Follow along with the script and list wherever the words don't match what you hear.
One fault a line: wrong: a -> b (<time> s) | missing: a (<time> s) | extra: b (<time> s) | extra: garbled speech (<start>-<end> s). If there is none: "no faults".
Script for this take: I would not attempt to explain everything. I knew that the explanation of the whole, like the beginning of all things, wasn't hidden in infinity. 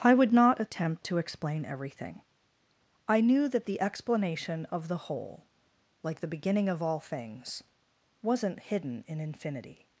no faults